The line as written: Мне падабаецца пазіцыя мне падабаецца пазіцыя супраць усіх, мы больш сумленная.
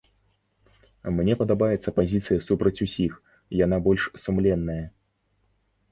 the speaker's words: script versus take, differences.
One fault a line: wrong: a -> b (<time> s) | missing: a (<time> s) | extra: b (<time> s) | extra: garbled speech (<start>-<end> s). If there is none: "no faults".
missing: мне падабаецца пазіцыя (2.4 s)
wrong: мы -> яна (3.6 s)